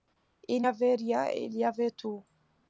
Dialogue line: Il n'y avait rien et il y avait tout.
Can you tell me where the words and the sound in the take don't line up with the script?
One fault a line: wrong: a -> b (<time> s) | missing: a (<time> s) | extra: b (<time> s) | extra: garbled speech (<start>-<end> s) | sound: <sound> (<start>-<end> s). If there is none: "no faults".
missing: n'y (0.6 s)